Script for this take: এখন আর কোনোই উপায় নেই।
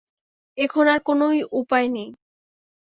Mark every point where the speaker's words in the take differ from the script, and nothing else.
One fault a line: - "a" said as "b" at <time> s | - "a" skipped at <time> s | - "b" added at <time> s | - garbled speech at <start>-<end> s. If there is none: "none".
none